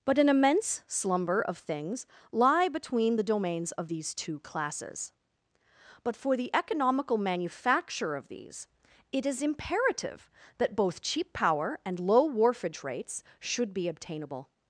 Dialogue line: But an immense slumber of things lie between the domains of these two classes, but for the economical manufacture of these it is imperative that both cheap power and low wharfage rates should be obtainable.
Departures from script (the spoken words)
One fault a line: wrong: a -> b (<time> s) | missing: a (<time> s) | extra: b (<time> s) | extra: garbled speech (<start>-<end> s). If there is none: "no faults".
no faults